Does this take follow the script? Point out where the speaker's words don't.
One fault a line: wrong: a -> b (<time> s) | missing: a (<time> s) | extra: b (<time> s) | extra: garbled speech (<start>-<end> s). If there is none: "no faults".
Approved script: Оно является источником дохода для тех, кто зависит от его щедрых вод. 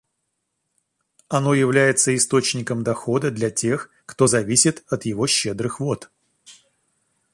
no faults